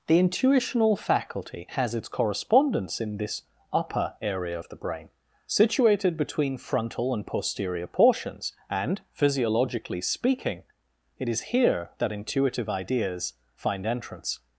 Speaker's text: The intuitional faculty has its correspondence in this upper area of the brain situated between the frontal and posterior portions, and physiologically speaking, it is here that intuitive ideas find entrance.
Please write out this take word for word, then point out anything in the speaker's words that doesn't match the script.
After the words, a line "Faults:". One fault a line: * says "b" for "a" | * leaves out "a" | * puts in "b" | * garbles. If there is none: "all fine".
The intuitional faculty has its correspondence in this upper area of the brain situated between frontal and posterior portions, and physiologically speaking, it is here that intuitive ideas find entrance.
Faults:
* leaves out "the"